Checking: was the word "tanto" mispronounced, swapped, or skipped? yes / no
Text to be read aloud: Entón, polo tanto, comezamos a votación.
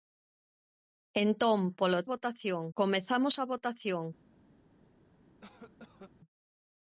yes